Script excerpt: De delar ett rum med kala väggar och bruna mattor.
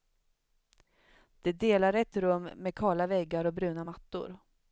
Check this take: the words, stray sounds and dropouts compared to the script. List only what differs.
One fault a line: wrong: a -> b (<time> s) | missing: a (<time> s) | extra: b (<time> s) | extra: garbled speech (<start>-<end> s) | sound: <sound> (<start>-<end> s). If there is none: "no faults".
no faults